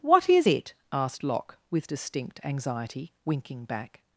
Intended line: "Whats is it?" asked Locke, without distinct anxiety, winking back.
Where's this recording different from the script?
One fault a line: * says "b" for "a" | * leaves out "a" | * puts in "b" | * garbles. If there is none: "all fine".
* says "What" for "Whats"
* says "with" for "without"